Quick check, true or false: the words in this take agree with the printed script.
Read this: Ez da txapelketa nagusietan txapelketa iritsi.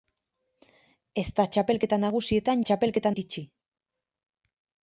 true